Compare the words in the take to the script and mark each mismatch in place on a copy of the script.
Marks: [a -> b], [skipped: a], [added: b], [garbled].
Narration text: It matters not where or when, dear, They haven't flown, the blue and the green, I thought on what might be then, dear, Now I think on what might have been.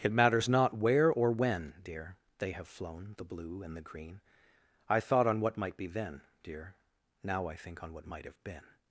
It matters not where or when, dear, They [haven't -> have] flown, the blue and the green, I thought on what might be then, dear, Now I think on what might have been.